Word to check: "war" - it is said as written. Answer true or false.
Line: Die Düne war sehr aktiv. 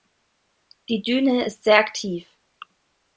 false